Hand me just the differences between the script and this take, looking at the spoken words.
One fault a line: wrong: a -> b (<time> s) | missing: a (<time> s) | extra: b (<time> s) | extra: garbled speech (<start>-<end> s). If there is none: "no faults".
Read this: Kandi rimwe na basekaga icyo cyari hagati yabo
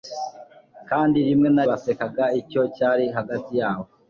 no faults